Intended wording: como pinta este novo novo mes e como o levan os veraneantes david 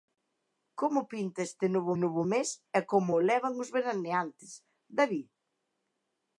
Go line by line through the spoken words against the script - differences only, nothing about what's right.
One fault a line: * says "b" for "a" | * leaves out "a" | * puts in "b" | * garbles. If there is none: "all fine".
all fine